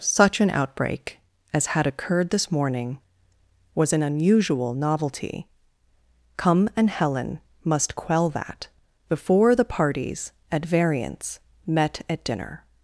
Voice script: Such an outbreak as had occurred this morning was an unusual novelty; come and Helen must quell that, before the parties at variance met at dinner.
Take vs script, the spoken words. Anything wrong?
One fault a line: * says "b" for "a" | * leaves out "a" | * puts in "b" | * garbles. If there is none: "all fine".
all fine